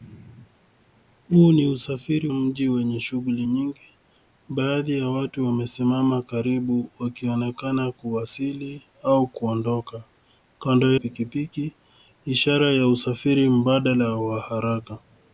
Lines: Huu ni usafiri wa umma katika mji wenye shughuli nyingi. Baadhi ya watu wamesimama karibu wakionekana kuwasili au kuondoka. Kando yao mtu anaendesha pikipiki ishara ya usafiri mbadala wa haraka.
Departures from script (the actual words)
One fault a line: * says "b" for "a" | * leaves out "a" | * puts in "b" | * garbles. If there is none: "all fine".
* leaves out "wa umma katika"
* leaves out "yao mtu anaendesha"